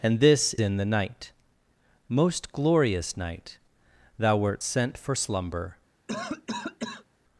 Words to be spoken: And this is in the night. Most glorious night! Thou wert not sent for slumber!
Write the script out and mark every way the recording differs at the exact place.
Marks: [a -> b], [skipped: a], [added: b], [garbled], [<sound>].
And this [skipped: is] in the night. Most glorious night! Thou wert [skipped: not] sent for slumber! [cough]